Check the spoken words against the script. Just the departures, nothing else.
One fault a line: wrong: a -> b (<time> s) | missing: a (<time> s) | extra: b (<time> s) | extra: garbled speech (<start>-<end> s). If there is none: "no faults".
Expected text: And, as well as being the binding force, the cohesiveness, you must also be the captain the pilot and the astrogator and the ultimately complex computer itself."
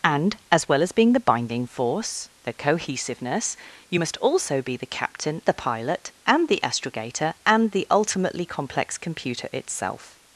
no faults